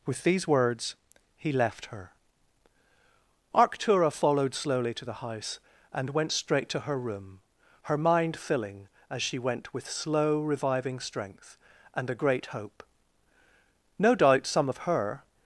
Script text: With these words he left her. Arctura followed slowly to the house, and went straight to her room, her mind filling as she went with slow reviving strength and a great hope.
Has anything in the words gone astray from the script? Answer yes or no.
yes